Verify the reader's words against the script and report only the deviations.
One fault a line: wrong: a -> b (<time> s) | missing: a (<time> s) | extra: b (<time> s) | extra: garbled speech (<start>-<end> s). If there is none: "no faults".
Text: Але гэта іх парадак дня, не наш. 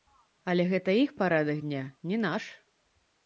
no faults